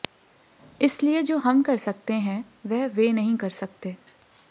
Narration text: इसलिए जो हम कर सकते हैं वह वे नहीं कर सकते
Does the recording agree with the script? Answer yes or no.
yes